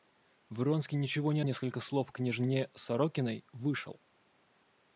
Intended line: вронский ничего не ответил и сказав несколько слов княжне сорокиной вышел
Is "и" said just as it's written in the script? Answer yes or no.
no